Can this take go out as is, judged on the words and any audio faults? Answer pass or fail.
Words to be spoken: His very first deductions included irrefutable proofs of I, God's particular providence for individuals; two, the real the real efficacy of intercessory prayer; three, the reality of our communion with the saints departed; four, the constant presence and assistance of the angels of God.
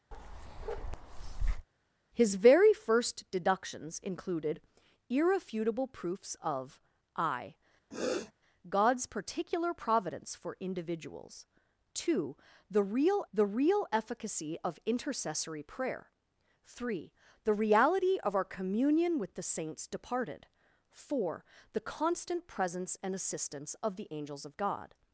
fail